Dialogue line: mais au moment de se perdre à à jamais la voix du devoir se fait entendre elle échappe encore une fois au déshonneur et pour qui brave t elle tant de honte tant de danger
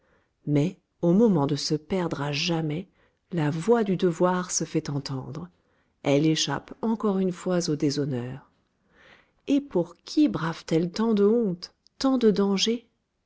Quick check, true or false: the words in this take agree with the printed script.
false